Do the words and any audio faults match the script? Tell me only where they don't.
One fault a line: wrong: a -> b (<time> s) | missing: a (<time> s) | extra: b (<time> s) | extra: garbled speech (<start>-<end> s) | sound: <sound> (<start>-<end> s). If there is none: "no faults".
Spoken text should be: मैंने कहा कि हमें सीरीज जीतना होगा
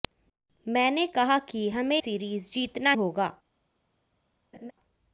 sound: laugh (4.5-4.7 s)